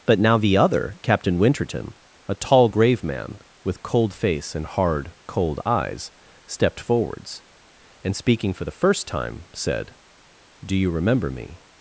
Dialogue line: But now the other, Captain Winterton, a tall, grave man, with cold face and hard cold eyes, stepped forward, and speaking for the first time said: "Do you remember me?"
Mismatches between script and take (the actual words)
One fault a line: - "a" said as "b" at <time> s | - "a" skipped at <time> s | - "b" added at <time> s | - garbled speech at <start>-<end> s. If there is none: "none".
- "forward" said as "forwards" at 6.8 s